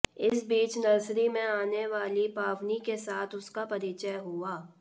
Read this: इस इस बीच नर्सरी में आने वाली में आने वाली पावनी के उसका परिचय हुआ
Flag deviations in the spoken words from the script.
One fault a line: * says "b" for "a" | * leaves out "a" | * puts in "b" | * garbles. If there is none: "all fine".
* leaves out "इस"
* leaves out "में आने वाली"
* puts in "साथ"